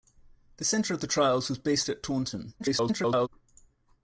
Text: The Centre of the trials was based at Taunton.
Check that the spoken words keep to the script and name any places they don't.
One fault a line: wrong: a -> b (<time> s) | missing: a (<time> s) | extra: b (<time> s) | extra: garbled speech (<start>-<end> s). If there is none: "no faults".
extra: garbled speech (2.6-3.3 s)